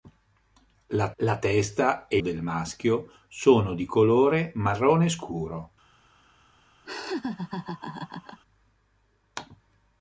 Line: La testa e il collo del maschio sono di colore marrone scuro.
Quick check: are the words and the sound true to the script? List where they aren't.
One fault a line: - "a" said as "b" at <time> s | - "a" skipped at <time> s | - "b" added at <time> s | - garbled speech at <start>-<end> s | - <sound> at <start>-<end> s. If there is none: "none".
- "la" added at 1.2 s
- "il collo" skipped at 2.2 s
- laugh at 6.8-8.4 s